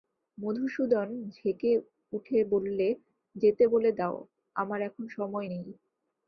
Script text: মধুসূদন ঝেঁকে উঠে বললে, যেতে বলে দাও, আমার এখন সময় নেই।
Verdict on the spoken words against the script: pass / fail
pass